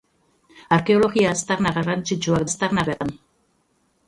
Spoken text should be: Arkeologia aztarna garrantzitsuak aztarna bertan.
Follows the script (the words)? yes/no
yes